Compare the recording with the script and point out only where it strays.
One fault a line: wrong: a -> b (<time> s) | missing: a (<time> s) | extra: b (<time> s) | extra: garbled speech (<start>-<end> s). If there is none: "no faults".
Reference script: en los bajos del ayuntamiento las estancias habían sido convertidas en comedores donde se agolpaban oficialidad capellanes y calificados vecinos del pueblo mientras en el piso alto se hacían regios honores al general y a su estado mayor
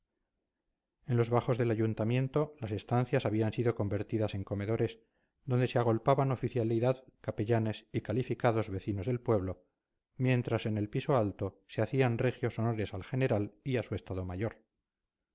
no faults